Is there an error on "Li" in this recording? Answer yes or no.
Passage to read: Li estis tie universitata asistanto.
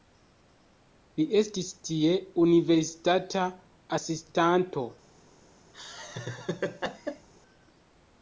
no